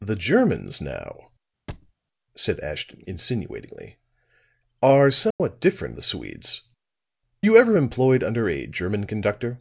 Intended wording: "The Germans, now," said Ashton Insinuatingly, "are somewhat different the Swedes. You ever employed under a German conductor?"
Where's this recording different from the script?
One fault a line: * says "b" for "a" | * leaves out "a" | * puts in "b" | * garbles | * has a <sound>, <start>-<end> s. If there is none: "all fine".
* has a thud, 1.7-1.9 s
* has a dropout, 5.3-5.4 s